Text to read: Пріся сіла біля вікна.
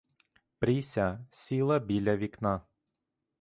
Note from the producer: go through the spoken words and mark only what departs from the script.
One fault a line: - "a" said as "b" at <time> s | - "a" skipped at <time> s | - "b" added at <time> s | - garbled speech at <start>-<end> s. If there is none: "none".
none